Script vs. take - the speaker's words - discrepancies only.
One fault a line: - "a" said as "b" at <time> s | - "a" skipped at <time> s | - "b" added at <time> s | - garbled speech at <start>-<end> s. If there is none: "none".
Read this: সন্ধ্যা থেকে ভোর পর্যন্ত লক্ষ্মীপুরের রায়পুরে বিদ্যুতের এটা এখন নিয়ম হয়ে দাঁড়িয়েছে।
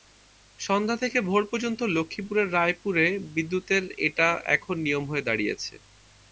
none